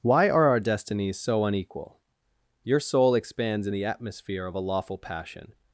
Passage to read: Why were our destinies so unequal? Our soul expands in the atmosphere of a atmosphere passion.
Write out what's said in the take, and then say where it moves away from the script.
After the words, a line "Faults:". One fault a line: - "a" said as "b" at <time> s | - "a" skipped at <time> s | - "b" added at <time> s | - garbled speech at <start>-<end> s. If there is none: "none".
Why are our destinies so unequal? Your soul expands in the atmosphere of a lawful passion.
Faults:
- "were" said as "are" at 0.3 s
- "Our" said as "Your" at 2.6 s
- "atmosphere" said as "lawful" at 4.6 s